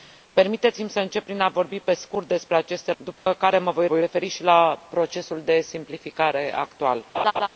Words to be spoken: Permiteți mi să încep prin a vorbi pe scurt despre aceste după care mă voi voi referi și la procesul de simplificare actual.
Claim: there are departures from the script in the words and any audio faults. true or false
true